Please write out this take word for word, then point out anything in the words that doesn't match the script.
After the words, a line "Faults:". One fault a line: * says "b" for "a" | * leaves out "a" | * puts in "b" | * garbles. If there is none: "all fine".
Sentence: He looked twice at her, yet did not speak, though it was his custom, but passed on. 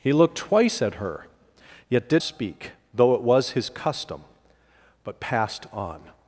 He looked twice at her, yet did speak, though it was his custom, but passed on.
Faults:
* leaves out "not"